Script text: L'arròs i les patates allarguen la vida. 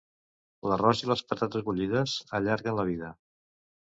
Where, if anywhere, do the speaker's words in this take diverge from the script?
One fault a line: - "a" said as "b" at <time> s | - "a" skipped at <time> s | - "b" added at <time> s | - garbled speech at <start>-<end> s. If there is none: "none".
- "bullides" added at 1.7 s